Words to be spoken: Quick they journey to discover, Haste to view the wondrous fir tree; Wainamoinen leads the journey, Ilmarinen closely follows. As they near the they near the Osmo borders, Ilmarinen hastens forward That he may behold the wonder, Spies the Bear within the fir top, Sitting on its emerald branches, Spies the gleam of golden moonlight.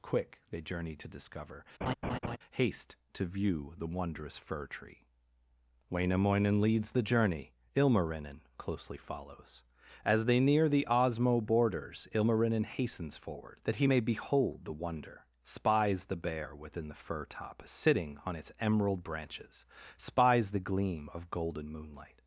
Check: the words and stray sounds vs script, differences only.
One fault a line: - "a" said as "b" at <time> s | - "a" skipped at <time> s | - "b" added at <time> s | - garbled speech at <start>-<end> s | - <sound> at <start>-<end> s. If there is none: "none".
- laugh at 1.8-2.4 s
- "they near the" skipped at 10.9 s